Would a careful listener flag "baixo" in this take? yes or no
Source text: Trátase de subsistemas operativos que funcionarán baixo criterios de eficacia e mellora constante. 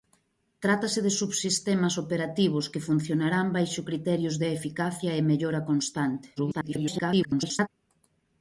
no